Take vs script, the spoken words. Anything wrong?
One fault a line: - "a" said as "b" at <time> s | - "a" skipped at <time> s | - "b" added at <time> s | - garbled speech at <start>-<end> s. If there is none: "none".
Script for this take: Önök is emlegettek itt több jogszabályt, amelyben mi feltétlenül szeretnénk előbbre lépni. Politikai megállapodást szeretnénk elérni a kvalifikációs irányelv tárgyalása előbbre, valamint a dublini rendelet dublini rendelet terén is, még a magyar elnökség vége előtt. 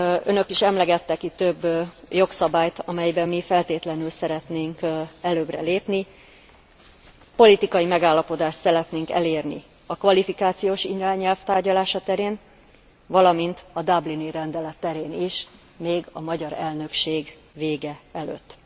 - "előbbre" said as "terén" at 12.0 s
- "dublini rendelet" skipped at 14.8 s